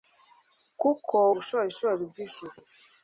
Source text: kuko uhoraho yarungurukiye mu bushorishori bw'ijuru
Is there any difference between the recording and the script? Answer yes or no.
yes